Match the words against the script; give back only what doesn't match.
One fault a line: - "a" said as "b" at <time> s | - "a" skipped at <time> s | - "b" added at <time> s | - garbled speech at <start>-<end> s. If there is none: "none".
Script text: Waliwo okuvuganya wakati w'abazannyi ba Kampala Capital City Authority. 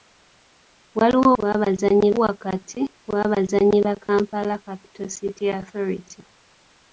- "okuvuganya" said as "w'abazannyi" at 1.4 s